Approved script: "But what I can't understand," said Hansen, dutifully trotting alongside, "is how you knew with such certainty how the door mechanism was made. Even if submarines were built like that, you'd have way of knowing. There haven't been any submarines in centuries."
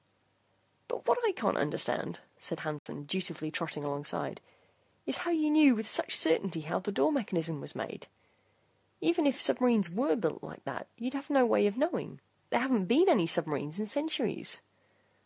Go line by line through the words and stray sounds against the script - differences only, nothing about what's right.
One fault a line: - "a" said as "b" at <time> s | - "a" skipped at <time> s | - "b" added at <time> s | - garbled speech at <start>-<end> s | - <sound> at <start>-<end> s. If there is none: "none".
- dropout at 2.8-2.9 s
- "no" added at 11.3 s